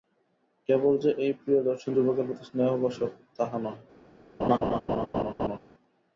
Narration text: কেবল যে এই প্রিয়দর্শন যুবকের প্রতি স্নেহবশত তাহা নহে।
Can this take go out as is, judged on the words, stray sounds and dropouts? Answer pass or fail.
fail